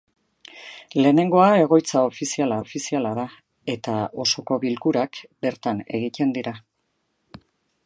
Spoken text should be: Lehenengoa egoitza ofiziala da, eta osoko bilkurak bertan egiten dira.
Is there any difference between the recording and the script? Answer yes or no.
yes